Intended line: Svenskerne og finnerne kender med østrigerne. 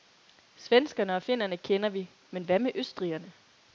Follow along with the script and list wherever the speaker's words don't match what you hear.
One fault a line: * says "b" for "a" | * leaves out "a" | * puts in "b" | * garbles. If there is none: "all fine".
* puts in "vi men hvad"